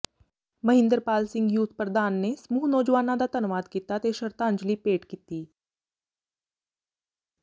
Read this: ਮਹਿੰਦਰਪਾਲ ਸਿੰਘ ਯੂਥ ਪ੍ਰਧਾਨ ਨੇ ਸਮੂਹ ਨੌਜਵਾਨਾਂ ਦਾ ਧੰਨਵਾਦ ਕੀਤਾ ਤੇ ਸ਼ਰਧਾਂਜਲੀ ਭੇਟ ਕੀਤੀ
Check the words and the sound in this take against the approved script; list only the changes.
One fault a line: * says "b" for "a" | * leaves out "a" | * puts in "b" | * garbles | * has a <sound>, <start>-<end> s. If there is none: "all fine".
all fine